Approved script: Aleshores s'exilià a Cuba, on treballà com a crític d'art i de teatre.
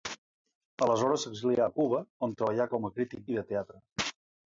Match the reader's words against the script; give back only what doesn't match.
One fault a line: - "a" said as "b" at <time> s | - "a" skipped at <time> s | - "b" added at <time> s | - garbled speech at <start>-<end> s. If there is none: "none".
- "d'art" skipped at 3.2 s